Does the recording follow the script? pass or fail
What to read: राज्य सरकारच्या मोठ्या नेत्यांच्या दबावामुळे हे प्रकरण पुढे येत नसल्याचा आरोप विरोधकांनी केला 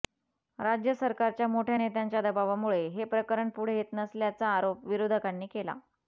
pass